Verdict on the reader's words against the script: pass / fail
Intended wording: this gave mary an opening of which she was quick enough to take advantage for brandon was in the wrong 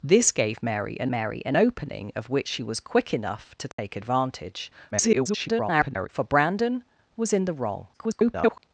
fail